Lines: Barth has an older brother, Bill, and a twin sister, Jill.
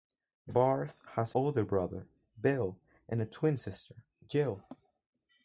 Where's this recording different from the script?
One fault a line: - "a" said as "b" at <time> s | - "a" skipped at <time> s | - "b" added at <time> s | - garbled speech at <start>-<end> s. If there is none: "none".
- "an" skipped at 1.4 s